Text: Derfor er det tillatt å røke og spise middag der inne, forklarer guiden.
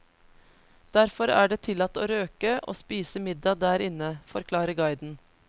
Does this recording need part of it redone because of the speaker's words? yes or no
no